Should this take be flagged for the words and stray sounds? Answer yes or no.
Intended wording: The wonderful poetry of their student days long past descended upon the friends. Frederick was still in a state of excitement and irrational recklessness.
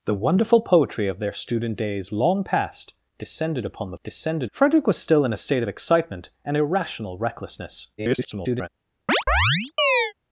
yes